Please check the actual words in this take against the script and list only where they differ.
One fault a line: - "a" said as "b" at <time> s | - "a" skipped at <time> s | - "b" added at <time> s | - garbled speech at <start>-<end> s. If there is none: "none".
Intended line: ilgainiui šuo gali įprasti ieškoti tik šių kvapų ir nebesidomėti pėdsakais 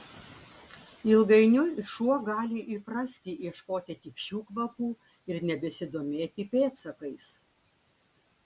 none